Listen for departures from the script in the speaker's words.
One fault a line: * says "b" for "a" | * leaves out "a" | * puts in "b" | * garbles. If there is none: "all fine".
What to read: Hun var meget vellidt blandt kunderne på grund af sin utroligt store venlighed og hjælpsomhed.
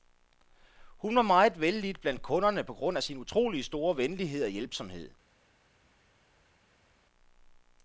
all fine